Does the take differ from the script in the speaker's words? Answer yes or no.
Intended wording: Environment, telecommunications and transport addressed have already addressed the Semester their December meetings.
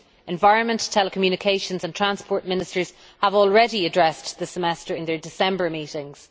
yes